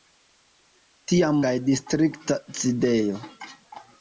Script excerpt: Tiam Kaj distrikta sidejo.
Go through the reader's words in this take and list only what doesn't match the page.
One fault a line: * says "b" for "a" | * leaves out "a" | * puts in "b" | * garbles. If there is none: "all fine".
all fine